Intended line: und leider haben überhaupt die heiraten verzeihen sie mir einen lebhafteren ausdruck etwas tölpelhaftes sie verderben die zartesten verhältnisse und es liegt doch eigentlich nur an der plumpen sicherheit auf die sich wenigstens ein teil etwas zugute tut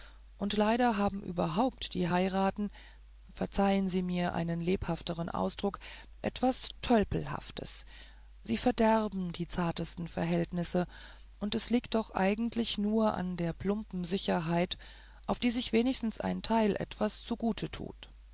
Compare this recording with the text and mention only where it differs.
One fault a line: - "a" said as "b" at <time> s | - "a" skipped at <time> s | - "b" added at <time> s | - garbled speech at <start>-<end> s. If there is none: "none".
none